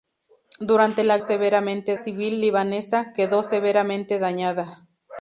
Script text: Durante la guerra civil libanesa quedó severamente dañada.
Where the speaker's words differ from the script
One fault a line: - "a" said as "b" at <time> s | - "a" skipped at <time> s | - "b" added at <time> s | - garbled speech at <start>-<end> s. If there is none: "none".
- "guerra" said as "severamente" at 1.2 s